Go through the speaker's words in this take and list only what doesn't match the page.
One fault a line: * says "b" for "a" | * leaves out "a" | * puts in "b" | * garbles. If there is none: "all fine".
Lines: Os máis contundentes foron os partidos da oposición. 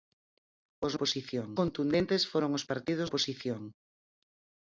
* says "oposición" for "máis"
* leaves out "da"